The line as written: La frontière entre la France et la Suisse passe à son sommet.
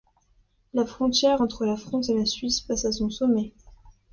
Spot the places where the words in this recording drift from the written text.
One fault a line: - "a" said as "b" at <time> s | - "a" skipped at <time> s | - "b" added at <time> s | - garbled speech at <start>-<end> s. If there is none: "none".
none